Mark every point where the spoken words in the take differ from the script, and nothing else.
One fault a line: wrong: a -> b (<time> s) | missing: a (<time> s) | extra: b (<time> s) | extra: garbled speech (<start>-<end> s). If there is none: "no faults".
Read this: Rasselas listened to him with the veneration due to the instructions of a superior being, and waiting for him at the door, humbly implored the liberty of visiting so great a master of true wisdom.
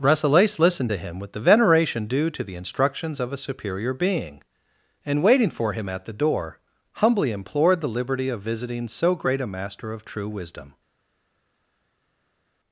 no faults